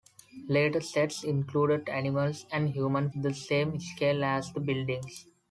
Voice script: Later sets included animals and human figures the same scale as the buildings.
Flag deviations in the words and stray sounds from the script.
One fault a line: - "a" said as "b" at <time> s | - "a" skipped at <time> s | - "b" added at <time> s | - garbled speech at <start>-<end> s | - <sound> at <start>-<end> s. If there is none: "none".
- "figures" skipped at 3.1 s